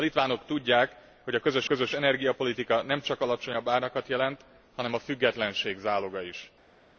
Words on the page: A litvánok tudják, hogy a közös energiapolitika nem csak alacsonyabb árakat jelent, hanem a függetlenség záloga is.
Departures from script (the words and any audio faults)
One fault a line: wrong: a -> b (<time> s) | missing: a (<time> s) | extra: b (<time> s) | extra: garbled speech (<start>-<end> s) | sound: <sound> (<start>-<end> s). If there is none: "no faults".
extra: közös (1.6 s)